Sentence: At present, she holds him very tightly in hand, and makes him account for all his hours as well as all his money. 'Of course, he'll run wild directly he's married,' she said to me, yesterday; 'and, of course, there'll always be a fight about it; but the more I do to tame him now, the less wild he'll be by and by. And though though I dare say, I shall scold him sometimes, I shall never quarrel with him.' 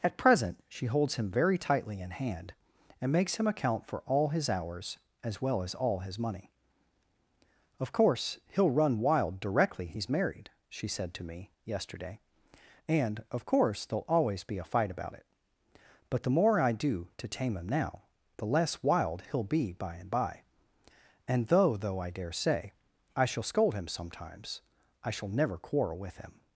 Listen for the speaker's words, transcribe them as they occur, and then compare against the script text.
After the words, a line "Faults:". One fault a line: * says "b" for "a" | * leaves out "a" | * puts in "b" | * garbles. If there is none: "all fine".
At present, she holds him very tightly in hand, and makes him account for all his hours as well as all his money. 'Of course, he'll run wild directly he's married,' she said to me, yesterday; 'and, of course, there'll always be a fight about it; but the more I do to tame him now, the less wild he'll be by and by. And though though I dare say, I shall scold him sometimes, I shall never quarrel with him.'
Faults:
all fine